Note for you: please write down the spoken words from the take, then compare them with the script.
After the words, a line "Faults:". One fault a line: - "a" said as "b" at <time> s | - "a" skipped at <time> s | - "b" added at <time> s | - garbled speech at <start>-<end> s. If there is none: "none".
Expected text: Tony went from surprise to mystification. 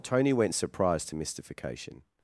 Tony went surprise to mystification.
Faults:
- "from" skipped at 0.6 s